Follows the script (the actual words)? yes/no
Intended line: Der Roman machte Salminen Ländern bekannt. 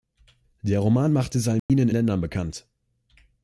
yes